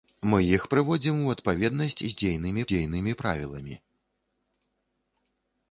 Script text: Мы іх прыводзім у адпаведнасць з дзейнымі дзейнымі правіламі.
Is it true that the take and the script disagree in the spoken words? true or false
false